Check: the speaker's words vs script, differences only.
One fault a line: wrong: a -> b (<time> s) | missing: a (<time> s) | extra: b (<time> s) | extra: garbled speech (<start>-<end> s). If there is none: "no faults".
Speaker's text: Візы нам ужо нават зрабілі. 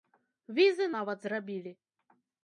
missing: нам ужо (0.9 s)